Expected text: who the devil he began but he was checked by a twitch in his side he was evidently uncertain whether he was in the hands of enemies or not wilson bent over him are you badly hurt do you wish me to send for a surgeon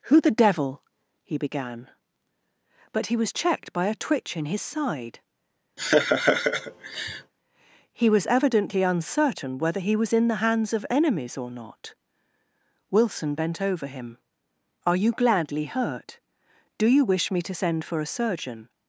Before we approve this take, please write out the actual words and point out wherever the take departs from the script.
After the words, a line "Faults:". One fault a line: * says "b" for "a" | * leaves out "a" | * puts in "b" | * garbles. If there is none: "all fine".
who the devil he began but he was checked by a twitch in his side he was evidently uncertain whether he was in the hands of enemies or not wilson bent over him are you gladly hurt do you wish me to send for a surgeon
Faults:
* says "gladly" for "badly"